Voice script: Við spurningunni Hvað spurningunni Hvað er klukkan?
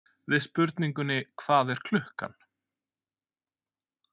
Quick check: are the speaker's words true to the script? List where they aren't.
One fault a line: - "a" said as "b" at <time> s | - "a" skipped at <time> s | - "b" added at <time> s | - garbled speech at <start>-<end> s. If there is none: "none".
- "spurningunni Hvað" skipped at 1.7 s